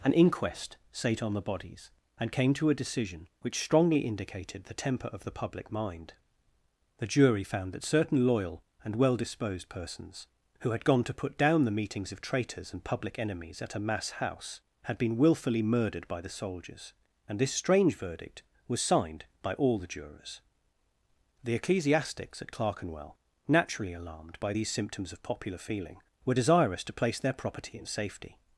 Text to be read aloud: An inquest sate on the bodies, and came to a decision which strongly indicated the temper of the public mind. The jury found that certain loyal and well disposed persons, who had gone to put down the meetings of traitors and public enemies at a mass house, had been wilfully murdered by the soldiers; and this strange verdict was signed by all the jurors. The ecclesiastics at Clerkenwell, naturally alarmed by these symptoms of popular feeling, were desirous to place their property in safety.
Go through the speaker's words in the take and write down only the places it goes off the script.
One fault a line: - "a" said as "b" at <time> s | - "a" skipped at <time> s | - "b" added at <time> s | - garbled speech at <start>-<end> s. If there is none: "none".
none